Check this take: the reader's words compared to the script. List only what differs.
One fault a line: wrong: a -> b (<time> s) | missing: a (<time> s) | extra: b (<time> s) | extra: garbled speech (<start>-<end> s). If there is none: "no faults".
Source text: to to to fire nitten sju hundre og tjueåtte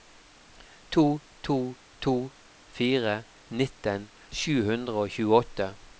no faults